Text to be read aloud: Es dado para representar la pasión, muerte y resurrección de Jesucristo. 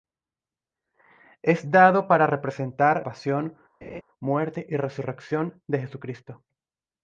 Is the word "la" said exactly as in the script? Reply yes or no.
no